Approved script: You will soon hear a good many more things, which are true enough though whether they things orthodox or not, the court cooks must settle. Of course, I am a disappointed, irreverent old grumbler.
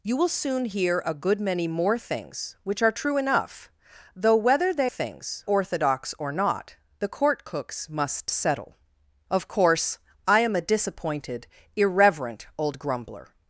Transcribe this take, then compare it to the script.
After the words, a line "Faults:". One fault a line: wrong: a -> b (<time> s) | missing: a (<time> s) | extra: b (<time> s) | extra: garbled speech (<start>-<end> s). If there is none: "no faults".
You will soon hear a good many more things, which are true enough though whether they things orthodox or not, the court cooks must settle. Of course, I am a disappointed, irreverent old grumbler.
Faults:
no faults